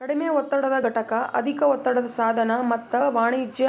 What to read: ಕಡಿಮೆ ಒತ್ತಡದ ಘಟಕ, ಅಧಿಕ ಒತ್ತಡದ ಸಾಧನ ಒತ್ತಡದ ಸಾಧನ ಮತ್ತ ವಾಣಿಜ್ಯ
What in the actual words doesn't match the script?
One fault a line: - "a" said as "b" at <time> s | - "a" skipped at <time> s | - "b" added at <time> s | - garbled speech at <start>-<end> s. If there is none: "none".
- "ಒತ್ತಡದ ಸಾಧನ" skipped at 2.5 s